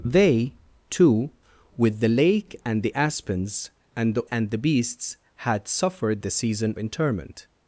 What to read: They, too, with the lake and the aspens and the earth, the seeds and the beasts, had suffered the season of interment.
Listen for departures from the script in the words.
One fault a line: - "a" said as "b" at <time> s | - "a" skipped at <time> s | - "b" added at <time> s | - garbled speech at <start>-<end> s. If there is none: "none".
- "earth the seeds" skipped at 4.2 s
- "of" skipped at 6.8 s